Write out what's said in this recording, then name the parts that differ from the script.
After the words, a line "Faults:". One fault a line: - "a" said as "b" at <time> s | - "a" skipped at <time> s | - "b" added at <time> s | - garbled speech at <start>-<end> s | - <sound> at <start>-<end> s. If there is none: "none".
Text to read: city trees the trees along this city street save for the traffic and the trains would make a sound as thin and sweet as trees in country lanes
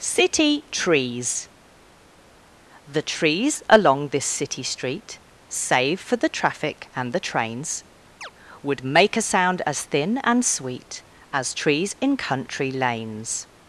city trees the trees along this city street save for the traffic and the trains would make a sound as thin and sweet as trees in country lanes
Faults:
- chirp at 8.2-8.3 s